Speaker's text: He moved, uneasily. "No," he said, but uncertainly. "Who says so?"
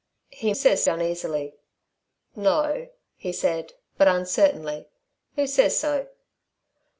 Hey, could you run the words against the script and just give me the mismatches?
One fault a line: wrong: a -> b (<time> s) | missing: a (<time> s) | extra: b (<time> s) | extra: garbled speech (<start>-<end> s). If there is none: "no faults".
wrong: moved -> says (0.5 s)